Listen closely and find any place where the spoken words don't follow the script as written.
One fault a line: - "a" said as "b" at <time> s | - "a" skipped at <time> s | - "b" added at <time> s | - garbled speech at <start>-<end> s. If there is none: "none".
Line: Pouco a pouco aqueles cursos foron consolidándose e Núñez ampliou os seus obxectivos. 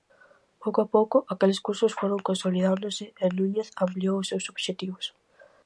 none